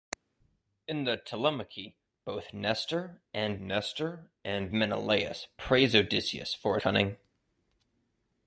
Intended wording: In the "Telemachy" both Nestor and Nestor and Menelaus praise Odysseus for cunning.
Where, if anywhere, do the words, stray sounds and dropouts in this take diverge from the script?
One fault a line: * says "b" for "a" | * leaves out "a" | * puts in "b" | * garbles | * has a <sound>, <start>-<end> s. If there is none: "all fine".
all fine